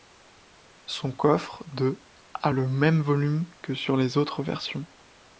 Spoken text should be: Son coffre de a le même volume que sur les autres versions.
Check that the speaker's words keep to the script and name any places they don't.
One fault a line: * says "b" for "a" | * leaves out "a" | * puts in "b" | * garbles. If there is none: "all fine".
all fine